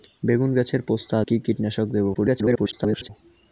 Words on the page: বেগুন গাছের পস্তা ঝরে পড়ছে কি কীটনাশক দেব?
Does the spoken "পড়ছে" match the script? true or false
false